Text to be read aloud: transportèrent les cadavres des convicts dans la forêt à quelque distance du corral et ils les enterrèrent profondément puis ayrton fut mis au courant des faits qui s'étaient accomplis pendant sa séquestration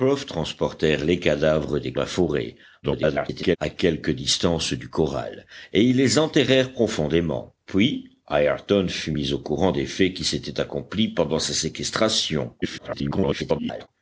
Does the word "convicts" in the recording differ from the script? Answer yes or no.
yes